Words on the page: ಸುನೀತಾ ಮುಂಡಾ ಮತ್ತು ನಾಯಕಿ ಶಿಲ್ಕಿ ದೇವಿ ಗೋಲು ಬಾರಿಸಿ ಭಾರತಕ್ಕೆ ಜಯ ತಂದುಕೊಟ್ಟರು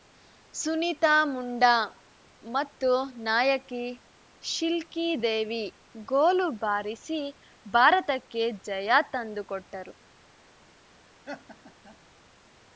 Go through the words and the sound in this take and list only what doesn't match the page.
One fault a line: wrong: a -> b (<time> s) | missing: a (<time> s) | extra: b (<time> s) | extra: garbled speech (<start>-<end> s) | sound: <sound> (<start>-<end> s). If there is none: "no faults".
sound: laugh (11.2-12.0 s)